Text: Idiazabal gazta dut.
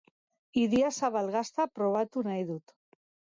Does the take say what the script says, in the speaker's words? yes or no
no